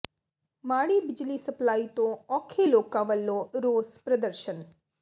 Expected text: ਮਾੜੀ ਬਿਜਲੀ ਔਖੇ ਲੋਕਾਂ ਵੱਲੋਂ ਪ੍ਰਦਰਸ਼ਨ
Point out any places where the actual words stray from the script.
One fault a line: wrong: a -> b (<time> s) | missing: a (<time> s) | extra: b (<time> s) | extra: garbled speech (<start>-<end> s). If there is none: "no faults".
extra: ਸਪਲਾਈ ਤੋਂ (1.4 s)
extra: ਰੋਸ (3.6 s)